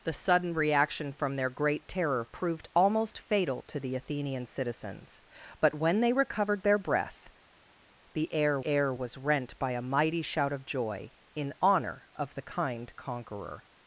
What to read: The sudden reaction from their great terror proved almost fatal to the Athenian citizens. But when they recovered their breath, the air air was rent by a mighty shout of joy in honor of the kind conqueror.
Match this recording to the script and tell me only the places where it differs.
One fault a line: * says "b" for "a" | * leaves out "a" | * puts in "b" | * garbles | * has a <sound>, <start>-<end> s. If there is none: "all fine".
all fine